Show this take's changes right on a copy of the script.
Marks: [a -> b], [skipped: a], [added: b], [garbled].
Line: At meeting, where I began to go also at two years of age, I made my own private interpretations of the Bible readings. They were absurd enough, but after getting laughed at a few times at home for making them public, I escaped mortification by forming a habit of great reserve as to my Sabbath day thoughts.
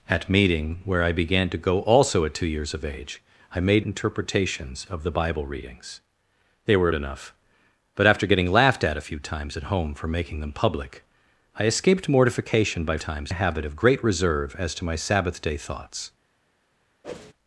At meeting, where I began to go also at two years of age, I made [skipped: my own private] interpretations of the Bible readings. They were [skipped: absurd] enough, but after getting laughed at a few times at home for making them public, I escaped mortification by [forming -> times] a habit of great reserve as to my Sabbath day thoughts.